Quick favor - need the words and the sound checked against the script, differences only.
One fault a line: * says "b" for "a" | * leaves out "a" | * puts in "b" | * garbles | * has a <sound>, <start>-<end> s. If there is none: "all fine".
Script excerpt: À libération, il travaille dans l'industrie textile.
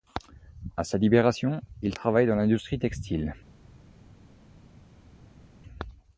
* puts in "sa"